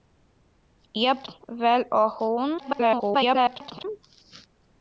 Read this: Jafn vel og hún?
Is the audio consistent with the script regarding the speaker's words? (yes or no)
no